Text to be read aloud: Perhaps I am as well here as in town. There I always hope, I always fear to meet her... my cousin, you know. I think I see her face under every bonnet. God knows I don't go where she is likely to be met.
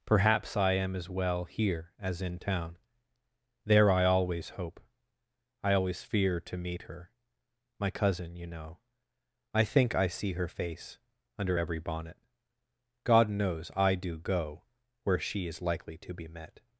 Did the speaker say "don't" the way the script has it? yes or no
no